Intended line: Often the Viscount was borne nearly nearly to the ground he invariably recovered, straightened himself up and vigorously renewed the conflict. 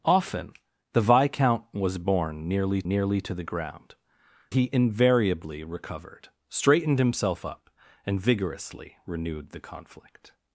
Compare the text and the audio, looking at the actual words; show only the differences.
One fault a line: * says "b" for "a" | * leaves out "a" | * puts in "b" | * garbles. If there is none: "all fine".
all fine